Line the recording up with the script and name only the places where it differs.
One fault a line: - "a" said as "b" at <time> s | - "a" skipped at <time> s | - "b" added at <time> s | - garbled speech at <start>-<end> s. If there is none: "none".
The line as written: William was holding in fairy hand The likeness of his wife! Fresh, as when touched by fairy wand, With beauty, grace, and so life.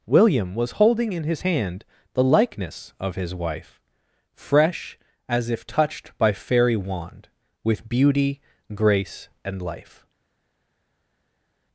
- "fairy" said as "his" at 1.2 s
- "when" said as "if" at 5.5 s
- "so" skipped at 9.6 s